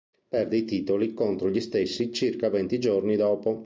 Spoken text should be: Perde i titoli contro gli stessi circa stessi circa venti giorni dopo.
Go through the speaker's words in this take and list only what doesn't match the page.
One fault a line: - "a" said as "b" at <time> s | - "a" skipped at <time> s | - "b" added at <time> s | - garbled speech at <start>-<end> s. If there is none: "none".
- "stessi circa" skipped at 2.5 s